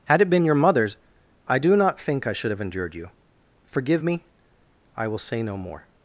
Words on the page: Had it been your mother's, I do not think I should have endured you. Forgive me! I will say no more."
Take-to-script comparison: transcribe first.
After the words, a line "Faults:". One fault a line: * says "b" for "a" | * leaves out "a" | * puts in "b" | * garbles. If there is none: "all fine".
Had it been your mother's, I do not think I should have endured you. Forgive me! I will say no more."
Faults:
all fine